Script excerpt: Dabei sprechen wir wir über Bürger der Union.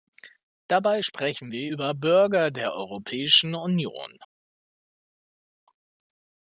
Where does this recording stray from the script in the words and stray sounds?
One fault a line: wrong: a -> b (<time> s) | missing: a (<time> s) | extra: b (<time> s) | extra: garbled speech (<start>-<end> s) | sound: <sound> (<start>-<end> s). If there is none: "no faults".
missing: wir (1.7 s)
extra: Europäischen (2.7 s)